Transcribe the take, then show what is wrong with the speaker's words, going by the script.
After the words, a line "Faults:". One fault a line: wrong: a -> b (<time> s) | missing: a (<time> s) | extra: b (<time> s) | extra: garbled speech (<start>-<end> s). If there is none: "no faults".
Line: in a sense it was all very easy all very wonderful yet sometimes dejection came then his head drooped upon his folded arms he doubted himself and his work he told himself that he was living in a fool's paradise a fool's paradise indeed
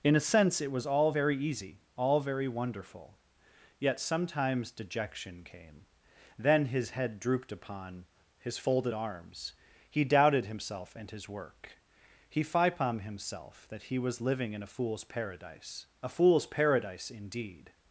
in a sense it was all very easy all very wonderful yet sometimes dejection came then his head drooped upon his folded arms he doubted himself and his work he fipom himself that he was living in a fool's paradise a fool's paradise indeed
Faults:
wrong: told -> fipom (12.4 s)